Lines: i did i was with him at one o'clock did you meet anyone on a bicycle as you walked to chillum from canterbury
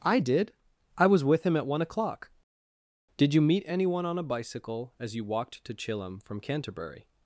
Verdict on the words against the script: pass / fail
pass